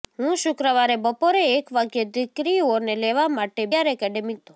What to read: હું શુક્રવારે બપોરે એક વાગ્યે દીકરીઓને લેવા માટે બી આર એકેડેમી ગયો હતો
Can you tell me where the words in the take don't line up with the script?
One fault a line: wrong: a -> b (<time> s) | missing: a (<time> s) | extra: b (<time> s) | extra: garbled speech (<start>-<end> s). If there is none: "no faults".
missing: બી (3.6 s)
missing: ગયો (4.4 s)